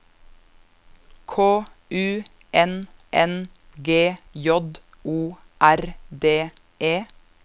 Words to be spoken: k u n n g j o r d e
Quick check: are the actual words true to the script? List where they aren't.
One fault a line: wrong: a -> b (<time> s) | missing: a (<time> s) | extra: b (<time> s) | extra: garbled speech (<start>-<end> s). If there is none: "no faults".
no faults